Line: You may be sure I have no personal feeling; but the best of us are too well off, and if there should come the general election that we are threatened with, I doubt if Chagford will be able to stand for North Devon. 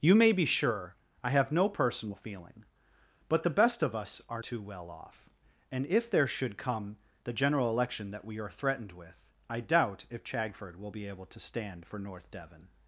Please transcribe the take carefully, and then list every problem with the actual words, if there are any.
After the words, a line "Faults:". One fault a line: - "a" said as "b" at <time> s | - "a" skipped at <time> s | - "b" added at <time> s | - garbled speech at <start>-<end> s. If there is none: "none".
You may be sure I have no personal feeling; but the best of us are too well off, and if there should come the general election that we are threatened with, I doubt if Chagford will be able to stand for North Devon.
Faults:
none